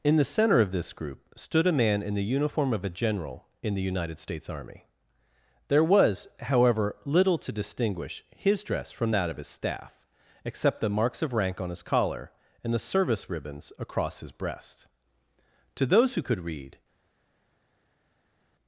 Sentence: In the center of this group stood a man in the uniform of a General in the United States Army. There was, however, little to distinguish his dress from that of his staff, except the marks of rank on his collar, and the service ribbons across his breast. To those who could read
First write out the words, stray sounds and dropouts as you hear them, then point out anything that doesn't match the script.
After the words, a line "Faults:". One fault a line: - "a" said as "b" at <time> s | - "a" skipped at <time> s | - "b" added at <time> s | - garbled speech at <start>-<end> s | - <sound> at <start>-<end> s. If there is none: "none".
In the center of this group stood a man in the uniform of a General in the United States Army. There was, however, little to distinguish his dress from that of his staff, except the marks of rank on his collar, and the service ribbons across his breast. To those who could read
Faults:
none